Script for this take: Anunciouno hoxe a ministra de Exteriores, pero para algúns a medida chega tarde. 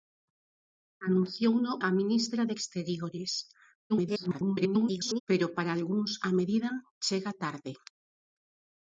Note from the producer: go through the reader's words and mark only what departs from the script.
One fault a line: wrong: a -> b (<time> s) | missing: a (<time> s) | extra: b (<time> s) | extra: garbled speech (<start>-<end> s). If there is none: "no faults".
missing: hoxe (1.7 s)
extra: garbled speech (3.9-5.2 s)